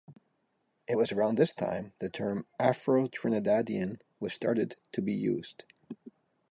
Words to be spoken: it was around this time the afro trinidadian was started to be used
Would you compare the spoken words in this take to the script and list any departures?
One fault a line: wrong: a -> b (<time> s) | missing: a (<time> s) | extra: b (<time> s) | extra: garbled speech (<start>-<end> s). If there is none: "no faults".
extra: term (2.1 s)